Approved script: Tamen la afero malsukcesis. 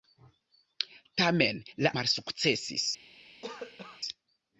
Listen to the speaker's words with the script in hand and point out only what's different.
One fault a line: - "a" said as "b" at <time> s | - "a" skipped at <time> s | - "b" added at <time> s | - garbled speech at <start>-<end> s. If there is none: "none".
- "afero" skipped at 1.9 s